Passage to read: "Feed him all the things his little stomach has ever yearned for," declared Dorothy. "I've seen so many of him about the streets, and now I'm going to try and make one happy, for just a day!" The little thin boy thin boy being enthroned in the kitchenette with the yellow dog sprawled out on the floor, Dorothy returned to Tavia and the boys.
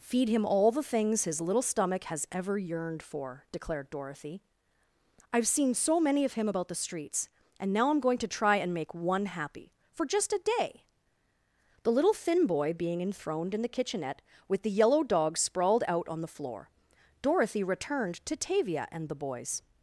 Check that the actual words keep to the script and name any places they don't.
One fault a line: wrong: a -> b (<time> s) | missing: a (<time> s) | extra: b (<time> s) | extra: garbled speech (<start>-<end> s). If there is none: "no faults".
missing: thin boy (12.7 s)